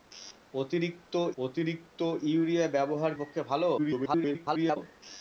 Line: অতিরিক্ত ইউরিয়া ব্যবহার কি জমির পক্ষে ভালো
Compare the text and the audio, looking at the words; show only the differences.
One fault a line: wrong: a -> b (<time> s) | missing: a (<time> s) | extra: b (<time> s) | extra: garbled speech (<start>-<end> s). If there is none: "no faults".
extra: অতিরিক্ত (1.4 s)
missing: কি জমির (3.1 s)
extra: garbled speech (3.8-4.8 s)